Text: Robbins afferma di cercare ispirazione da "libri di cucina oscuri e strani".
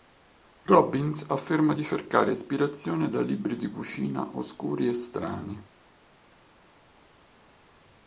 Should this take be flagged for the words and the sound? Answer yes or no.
no